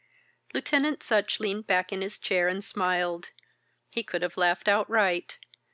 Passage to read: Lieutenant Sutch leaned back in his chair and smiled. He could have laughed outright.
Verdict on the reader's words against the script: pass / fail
pass